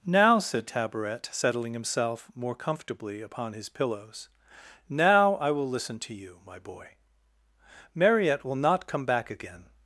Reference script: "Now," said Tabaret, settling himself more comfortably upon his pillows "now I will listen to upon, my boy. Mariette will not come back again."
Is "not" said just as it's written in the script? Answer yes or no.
yes